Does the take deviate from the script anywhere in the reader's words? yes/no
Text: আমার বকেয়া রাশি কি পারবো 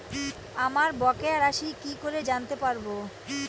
yes